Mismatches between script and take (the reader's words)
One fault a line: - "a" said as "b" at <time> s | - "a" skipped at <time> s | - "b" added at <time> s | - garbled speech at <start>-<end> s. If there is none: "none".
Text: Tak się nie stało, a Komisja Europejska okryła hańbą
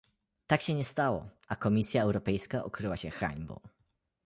- "się" added at 2.9 s